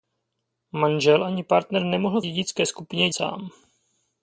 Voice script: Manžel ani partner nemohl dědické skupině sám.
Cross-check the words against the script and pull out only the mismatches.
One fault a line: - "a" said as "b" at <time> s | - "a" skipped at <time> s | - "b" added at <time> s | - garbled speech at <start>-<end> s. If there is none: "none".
none